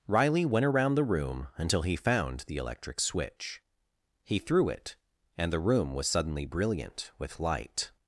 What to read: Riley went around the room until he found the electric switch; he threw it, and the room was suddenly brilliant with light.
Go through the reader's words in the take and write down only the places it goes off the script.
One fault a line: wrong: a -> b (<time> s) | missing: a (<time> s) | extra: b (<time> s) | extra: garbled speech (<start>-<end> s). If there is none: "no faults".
no faults